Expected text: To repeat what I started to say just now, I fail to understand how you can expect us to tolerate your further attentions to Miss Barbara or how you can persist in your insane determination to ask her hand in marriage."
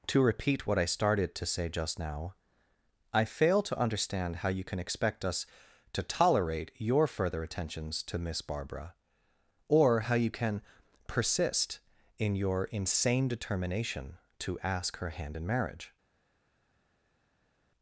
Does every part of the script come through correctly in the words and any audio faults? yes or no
yes